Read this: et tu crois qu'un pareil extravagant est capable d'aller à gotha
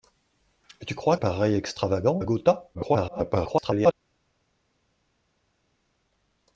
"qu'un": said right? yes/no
no